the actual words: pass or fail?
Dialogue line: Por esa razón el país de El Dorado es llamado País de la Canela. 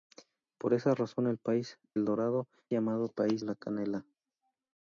fail